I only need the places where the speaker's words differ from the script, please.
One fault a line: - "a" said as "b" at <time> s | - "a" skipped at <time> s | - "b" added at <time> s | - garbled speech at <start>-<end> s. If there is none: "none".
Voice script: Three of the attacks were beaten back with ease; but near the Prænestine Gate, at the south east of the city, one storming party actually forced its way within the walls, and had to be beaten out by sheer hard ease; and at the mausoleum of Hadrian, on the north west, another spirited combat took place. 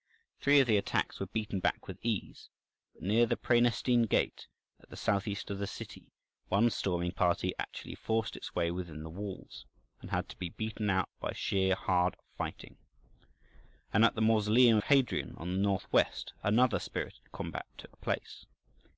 - "ease" said as "fighting" at 12.3 s